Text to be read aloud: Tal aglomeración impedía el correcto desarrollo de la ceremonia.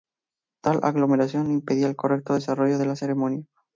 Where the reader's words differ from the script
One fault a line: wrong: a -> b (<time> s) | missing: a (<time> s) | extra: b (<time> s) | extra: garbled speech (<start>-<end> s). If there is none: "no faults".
no faults